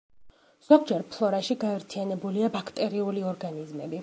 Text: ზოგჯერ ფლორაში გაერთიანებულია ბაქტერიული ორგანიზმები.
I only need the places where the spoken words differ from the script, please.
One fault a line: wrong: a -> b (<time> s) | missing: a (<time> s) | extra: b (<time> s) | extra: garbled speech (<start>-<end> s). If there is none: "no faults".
no faults